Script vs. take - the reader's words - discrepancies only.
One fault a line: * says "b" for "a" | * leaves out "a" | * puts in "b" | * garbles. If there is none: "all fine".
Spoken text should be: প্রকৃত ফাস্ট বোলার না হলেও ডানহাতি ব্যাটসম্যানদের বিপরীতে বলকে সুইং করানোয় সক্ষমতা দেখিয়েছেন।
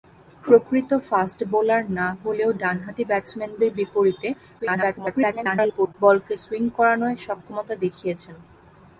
* garbles